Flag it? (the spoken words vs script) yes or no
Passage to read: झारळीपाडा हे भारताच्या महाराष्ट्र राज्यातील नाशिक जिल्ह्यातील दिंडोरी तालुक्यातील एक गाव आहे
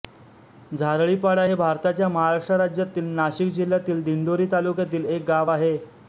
no